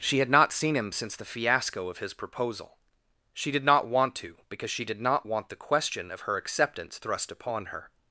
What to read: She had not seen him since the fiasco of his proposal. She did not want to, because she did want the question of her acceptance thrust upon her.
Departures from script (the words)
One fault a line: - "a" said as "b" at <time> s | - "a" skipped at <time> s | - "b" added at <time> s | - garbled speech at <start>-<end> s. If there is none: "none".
- "not" added at 5.0 s